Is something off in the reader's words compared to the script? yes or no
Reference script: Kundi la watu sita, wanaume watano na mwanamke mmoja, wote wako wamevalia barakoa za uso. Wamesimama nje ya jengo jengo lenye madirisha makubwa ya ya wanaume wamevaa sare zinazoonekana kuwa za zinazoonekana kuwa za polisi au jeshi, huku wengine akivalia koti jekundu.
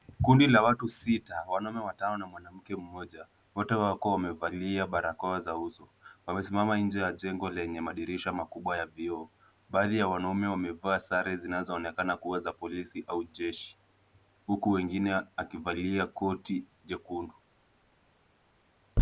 yes